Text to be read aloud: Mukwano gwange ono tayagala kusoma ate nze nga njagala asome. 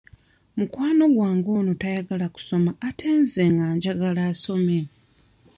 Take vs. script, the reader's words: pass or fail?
pass